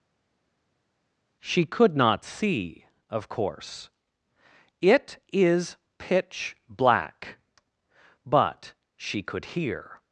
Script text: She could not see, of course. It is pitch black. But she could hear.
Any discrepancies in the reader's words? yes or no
no